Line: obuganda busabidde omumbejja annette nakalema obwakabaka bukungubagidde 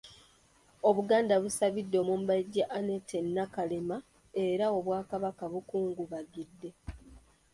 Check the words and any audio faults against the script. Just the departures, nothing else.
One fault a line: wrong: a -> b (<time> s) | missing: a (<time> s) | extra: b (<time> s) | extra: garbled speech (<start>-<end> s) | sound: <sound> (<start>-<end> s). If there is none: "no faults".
extra: era (4.4 s)